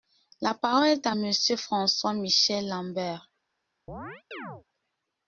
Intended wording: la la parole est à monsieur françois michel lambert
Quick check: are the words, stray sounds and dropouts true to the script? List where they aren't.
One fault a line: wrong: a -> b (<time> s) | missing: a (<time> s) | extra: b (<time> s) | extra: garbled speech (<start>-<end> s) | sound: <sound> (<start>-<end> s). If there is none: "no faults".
missing: la (0.6 s)
sound: chirp (3.9-4.6 s)